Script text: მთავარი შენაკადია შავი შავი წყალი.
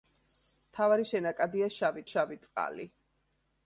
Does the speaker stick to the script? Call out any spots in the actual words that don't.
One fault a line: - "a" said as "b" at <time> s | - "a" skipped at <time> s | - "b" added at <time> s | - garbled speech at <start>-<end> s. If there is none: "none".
none